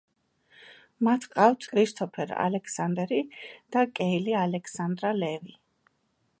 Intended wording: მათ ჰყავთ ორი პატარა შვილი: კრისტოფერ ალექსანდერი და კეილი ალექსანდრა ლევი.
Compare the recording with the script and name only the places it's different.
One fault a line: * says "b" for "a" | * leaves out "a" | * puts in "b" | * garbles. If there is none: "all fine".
* leaves out "ორი პატარა შვილი"